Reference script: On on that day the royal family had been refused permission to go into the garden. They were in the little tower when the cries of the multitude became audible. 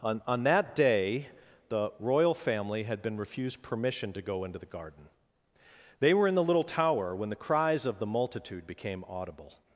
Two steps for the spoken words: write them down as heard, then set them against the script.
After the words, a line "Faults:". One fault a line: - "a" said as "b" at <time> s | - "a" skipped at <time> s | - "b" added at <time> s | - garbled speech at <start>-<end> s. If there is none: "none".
On on that day the royal family had been refused permission to go into the garden. They were in the little tower when the cries of the multitude became audible.
Faults:
none